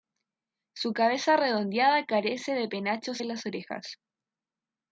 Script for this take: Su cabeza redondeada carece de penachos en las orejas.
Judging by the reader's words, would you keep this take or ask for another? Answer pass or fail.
pass